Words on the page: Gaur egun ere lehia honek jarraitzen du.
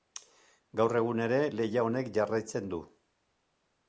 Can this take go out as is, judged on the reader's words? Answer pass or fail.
pass